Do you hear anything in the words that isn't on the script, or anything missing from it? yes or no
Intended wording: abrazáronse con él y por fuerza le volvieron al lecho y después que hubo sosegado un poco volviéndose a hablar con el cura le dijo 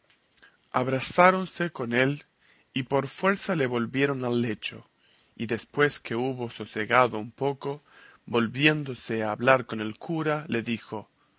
no